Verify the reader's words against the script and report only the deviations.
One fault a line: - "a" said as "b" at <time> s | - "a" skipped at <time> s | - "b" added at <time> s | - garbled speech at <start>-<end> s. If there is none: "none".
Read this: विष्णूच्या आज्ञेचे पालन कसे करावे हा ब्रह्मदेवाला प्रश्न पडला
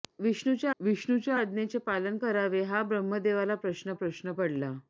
- "विष्णूच्या" added at 0.8 s
- "कसे" skipped at 2.2 s
- "प्रश्न" added at 3.9 s